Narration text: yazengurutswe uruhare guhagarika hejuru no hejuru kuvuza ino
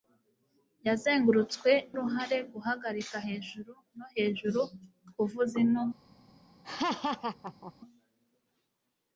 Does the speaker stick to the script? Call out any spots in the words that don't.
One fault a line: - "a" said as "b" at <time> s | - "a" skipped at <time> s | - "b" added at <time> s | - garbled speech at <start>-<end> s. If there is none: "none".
none